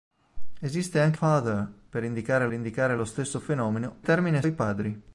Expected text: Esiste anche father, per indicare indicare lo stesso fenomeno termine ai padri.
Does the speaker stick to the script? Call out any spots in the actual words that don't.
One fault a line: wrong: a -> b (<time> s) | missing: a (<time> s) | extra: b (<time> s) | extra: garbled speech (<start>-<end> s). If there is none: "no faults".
no faults